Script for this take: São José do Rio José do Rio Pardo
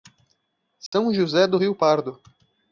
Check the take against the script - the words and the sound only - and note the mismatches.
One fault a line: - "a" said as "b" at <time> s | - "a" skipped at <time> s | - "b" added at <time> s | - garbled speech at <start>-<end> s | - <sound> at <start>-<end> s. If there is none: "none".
- dropout at 0.9-0.9 s
- "José do Rio" skipped at 1.8 s